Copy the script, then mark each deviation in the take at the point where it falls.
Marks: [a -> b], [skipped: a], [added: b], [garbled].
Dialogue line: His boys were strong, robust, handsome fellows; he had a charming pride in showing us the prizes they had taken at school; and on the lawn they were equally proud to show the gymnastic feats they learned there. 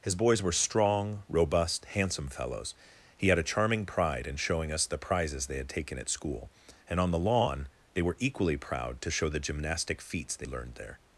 His boys were strong, robust, handsome fellows; he had a charming pride in showing us the prizes they had taken at school; and on the lawn they were equally proud to show the gymnastic feats they learned there.